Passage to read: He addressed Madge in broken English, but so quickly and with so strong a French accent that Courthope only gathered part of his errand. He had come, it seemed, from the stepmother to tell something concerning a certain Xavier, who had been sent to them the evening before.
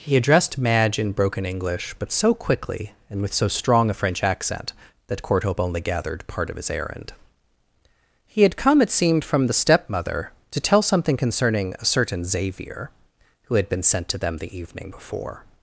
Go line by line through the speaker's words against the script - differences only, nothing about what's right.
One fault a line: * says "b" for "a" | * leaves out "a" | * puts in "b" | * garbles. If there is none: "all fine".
all fine